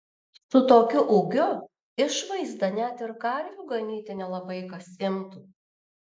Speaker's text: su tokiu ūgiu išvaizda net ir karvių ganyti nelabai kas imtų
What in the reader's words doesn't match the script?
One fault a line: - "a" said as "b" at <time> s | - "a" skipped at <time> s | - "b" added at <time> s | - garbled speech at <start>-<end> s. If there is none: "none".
none